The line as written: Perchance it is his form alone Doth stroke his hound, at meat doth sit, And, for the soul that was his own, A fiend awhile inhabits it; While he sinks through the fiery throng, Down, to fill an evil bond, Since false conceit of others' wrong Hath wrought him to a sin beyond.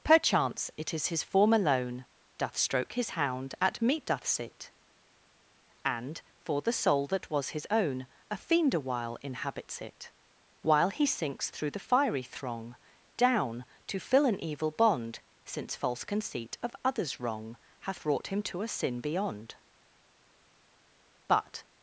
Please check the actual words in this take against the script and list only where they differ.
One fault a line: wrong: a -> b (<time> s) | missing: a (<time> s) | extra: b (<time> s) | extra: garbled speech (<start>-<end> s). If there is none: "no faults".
extra: But (21.3 s)